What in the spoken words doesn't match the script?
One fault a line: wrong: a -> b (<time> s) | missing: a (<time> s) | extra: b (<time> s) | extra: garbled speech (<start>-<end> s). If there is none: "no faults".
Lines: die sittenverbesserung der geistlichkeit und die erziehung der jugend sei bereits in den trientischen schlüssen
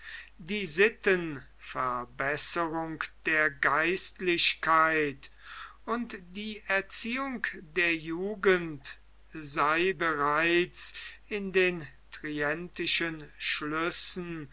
no faults